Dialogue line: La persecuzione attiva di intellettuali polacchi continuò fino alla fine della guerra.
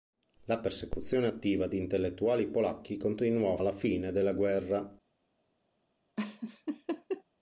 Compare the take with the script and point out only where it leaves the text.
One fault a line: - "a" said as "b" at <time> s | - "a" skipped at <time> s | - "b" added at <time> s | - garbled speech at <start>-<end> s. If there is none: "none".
- "fino" skipped at 3.6 s